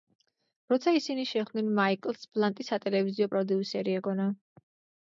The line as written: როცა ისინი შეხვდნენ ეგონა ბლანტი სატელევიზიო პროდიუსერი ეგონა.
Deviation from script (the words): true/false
true